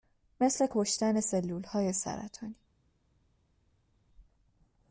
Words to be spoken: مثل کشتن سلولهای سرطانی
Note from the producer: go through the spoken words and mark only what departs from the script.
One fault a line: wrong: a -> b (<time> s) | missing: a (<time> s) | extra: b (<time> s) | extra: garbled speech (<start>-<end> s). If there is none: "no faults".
no faults